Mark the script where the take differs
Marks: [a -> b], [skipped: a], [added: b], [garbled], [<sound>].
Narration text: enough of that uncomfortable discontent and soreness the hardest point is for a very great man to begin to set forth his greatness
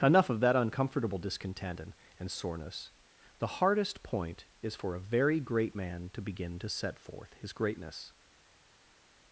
enough of that uncomfortable discontent and [added: and] soreness the hardest point is for a very great man to begin to set forth his greatness